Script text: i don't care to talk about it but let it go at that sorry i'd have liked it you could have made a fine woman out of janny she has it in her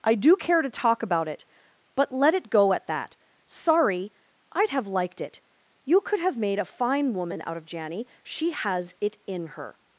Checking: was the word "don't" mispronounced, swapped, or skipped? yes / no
yes